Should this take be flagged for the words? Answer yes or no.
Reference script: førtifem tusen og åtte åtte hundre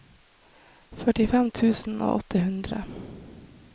yes